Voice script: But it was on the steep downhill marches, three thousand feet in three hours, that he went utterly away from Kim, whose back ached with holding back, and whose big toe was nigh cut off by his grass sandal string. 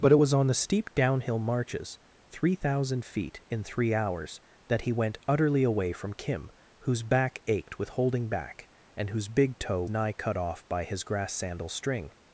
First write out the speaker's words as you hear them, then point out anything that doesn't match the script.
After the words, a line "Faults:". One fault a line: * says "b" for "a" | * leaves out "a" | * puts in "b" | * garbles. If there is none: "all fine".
But it was on the steep downhill marches, three thousand feet in three hours, that he went utterly away from Kim, whose back ached with holding back, and whose big toe nigh cut off by his grass sandal string.
Faults:
* leaves out "was"